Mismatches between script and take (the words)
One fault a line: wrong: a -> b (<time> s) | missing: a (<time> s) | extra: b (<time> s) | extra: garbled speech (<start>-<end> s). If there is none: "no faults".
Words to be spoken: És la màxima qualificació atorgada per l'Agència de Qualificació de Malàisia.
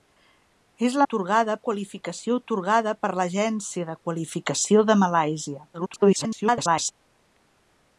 wrong: màxima -> atorgada (1.0 s)
extra: garbled speech (5.7-6.9 s)